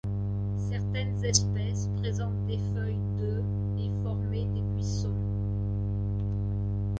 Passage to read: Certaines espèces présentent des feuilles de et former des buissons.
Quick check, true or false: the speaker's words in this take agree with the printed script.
true